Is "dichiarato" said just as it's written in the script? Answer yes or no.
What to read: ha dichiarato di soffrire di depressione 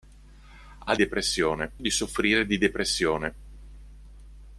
no